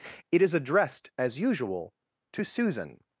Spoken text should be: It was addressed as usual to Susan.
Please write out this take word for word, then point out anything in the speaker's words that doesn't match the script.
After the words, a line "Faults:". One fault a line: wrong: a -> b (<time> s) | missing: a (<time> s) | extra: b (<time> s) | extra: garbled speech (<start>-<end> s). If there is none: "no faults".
It is addressed as usual to Susan.
Faults:
wrong: was -> is (0.4 s)